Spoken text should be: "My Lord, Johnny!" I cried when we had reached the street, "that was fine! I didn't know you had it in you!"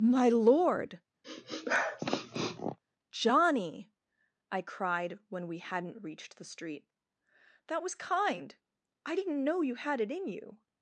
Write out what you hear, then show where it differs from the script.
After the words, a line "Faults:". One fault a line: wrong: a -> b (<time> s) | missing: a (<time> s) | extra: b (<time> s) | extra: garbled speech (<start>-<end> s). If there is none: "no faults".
"My Lord, Johnny!" I cried when we hadn't reached the street, "that was kind! I didn't know you had it in you!"
Faults:
wrong: had -> hadn't (5.6 s)
wrong: fine -> kind (7.9 s)